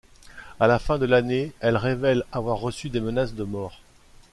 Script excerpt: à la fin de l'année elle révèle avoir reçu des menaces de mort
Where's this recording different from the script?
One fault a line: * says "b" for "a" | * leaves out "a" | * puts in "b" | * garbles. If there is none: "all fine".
all fine